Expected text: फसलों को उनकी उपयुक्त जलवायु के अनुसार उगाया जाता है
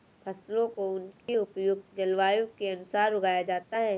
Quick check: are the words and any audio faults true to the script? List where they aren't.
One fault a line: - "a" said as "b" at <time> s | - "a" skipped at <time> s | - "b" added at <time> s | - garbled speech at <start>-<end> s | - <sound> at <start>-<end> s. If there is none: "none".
- dropout at 1.2-1.3 s